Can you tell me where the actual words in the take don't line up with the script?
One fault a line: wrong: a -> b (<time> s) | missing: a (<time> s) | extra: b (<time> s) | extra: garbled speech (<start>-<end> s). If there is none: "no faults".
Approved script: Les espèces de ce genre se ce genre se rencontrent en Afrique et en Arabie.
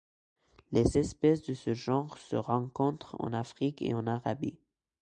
missing: ce genre se (2.4 s)